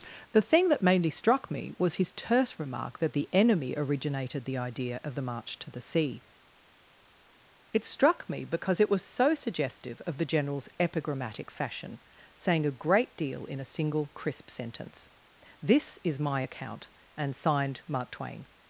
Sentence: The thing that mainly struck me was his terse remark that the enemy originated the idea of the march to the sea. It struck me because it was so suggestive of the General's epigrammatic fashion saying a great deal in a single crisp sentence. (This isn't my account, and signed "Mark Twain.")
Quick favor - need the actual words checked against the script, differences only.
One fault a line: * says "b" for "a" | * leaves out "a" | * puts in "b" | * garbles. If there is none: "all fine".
* says "is" for "isn't"